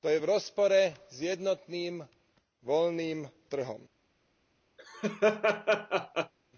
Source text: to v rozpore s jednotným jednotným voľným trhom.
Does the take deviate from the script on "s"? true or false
false